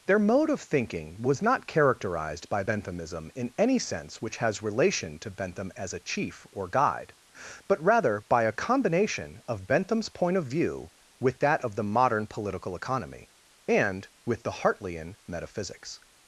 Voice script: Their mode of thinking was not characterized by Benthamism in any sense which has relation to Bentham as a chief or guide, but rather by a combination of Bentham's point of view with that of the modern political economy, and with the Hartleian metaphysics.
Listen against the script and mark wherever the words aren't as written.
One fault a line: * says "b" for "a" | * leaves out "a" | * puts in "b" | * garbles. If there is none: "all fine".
all fine